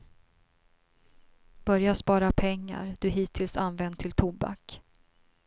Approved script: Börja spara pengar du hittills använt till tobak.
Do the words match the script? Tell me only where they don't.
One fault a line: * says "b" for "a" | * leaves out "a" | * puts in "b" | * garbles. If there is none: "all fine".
all fine